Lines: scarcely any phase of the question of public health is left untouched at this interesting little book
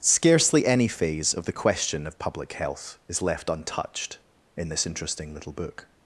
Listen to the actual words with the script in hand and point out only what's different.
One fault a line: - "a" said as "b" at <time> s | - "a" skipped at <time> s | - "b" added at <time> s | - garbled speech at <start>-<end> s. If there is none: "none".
- "at" said as "in" at 4.6 s